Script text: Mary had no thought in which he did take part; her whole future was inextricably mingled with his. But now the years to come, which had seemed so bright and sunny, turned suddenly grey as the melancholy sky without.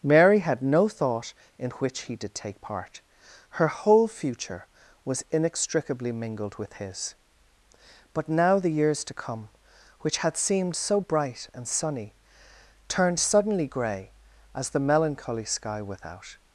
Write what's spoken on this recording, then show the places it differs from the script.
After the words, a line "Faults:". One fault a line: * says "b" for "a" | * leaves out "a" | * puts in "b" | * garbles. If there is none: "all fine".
Mary had no thought in which he did take part; her whole future was inextricably mingled with his. But now the years to come, which had seemed so bright and sunny, turned suddenly grey as the melancholy sky without.
Faults:
all fine